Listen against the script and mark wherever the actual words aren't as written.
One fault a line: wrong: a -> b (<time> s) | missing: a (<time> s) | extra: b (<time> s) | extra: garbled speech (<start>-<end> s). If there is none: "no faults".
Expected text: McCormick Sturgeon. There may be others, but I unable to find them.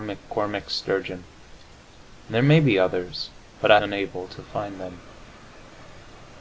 no faults